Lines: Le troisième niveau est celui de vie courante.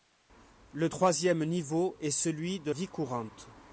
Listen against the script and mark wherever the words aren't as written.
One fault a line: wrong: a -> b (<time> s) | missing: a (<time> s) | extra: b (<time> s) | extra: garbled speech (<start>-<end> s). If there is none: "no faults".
no faults